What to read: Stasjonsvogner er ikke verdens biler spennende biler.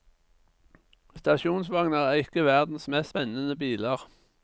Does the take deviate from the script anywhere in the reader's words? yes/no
yes